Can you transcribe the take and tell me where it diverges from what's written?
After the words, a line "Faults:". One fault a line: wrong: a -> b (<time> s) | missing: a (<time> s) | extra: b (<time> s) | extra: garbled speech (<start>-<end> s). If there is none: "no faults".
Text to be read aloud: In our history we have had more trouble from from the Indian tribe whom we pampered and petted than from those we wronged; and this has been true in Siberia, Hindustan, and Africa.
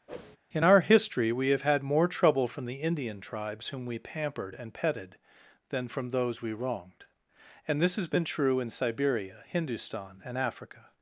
In our history we have had more trouble from the Indian tribes whom we pampered and petted than from those we wronged; and this has been true in Siberia, Hindustan, and Africa.
Faults:
missing: from (2.6 s)
wrong: tribe -> tribes (3.2 s)